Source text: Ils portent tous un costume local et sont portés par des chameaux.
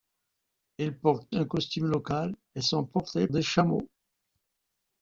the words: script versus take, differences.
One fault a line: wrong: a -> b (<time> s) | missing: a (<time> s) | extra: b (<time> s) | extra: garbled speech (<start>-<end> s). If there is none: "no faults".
missing: tous (1.3 s)
missing: par (3.3 s)